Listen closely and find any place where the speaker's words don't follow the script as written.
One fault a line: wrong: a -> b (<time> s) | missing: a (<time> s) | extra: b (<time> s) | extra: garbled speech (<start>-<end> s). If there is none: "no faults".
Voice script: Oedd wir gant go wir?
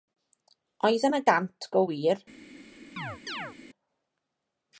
wrong: wir -> yna (1.1 s)